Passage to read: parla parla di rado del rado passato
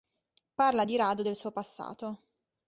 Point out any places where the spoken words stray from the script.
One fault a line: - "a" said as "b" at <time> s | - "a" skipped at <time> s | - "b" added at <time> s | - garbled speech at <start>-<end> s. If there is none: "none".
- "parla" skipped at 0.8 s
- "rado" said as "suo" at 1.3 s